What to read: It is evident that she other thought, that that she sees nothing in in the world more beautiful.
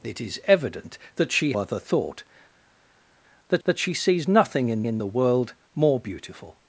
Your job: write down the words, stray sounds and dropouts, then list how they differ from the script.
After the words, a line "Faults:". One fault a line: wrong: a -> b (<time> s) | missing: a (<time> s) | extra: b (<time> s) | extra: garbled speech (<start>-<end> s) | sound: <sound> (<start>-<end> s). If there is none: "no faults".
It is evident that she other thought, that that she sees nothing in in the world more beautiful.
Faults:
no faults